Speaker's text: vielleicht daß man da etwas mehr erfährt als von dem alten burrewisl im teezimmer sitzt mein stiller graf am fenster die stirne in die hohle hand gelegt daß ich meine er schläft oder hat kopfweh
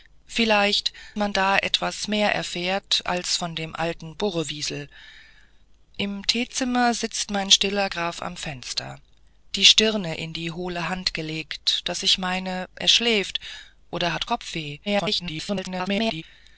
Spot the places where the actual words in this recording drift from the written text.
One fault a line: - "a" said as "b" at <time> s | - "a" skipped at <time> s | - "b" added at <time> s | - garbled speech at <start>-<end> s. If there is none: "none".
- "daß" skipped at 0.9 s
- garbled speech at 14.9-16.2 s